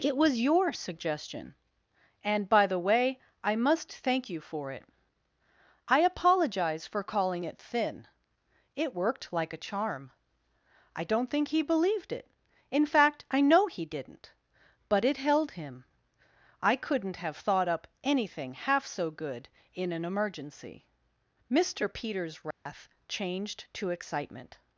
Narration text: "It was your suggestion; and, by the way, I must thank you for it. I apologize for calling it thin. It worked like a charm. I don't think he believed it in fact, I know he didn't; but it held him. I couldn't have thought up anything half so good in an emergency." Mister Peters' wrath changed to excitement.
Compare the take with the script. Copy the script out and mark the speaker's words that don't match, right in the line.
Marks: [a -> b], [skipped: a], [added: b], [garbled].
"It was your suggestion; and, by the way, I must thank you for it. I apologize for calling it thin. It worked like a charm. I don't think he believed it in fact, I know he didn't; but it held him. I couldn't have thought up anything half so good in an emergency." Mister Peters' wrath changed to excitement.